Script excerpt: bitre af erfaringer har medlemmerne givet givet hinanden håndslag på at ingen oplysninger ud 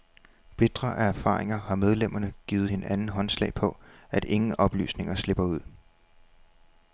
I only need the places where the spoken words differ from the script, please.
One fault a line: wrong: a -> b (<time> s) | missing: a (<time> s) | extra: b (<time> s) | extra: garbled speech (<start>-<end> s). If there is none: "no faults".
missing: givet (2.7 s)
extra: slipper (5.1 s)